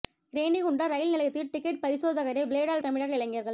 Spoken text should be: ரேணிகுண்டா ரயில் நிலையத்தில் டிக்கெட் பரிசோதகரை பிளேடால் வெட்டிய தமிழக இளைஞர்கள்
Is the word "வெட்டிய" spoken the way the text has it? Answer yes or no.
no